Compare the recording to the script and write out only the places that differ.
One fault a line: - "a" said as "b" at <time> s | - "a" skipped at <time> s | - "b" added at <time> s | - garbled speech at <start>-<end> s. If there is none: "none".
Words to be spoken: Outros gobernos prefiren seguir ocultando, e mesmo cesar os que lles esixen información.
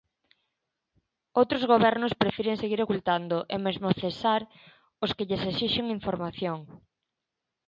none